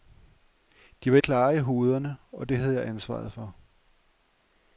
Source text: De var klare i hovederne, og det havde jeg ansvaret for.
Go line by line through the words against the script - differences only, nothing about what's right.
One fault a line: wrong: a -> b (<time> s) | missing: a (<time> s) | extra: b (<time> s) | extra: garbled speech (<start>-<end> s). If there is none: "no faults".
no faults